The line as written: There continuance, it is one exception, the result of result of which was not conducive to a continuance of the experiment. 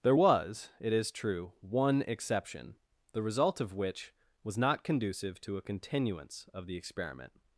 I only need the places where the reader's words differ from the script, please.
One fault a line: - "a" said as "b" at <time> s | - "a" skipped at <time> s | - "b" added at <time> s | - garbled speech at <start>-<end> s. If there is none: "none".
- "continuance" said as "was" at 0.1 s
- "true" added at 1.1 s
- "result of" skipped at 3.7 s